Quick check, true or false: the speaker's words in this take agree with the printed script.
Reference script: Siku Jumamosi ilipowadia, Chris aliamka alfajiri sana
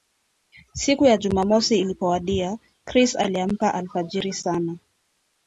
false